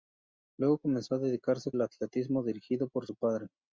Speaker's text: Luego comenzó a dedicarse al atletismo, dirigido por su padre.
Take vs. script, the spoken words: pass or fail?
pass